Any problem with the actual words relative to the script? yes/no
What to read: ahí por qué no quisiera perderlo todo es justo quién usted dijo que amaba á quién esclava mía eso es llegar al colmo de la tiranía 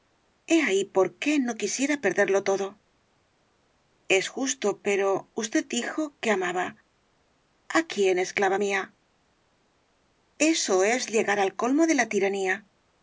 yes